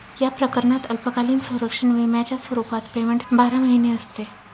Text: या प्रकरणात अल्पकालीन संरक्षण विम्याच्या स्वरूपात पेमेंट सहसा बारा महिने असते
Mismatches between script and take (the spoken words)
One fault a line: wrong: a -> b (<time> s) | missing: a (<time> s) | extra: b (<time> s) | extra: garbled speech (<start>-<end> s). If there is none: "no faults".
missing: सहसा (3.2 s)